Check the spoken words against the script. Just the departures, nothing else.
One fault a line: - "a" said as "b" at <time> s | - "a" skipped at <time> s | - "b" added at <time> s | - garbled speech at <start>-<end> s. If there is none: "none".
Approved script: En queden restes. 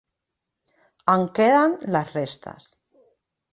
- "les" added at 2.0 s